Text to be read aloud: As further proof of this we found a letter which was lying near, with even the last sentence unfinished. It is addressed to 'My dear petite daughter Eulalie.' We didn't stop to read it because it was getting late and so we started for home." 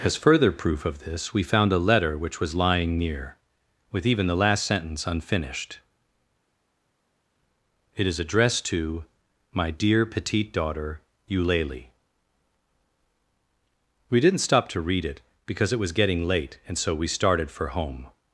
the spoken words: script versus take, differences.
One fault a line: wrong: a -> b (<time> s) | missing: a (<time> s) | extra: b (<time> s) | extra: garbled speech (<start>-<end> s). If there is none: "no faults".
no faults